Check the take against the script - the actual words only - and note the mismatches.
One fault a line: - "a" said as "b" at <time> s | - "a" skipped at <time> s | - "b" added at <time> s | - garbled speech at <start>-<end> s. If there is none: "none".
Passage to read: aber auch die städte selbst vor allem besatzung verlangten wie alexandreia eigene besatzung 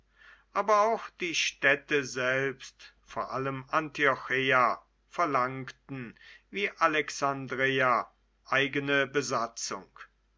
- "besatzung" said as "antiocheia" at 3.7 s